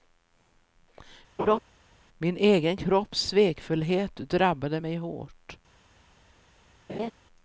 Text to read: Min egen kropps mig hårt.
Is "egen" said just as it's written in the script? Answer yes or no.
yes